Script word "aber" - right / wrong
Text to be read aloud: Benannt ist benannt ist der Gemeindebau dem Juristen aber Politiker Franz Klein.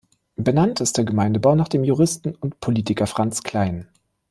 wrong